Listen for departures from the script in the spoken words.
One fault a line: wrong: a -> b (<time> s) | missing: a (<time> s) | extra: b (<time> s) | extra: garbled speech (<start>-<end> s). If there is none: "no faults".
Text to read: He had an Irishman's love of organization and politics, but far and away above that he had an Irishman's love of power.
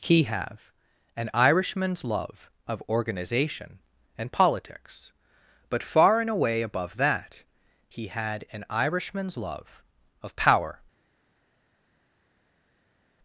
wrong: had -> have (0.2 s)